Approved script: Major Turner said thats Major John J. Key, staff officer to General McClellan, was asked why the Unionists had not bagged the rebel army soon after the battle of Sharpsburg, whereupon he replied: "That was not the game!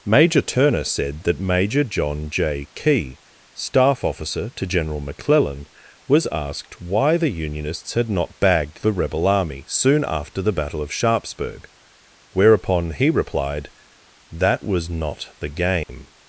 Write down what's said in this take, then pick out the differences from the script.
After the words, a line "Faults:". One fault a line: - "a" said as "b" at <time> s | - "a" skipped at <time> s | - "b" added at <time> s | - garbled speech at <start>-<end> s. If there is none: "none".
Major Turner said that Major John J. Key, staff officer to General McClellan, was asked why the Unionists had not bagged the rebel army soon after the battle of Sharpsburg, whereupon he replied: "That was not the game!
Faults:
- "thats" said as "that" at 1.2 s